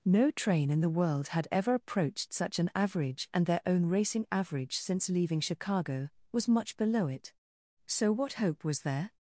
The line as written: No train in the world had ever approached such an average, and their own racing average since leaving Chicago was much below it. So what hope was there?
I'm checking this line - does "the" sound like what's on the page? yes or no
yes